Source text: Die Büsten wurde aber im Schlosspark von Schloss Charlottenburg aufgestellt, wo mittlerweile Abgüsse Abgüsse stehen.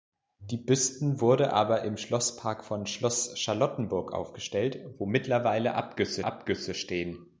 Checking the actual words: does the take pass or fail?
pass